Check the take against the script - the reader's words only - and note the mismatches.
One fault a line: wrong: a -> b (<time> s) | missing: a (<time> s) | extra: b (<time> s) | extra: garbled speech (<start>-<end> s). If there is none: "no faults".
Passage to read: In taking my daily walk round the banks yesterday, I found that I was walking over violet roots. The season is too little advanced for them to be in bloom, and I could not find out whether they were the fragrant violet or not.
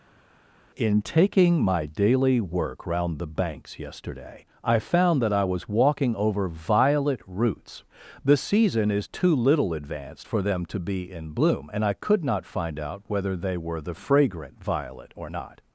wrong: walk -> work (2.4 s)